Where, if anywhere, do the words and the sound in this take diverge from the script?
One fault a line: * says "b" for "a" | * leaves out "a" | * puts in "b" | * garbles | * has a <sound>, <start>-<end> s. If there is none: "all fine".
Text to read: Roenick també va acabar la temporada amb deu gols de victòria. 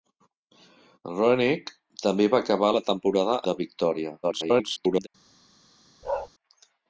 * leaves out "amb deu gols"
* garbles
* has a bark, 6.0-6.3 s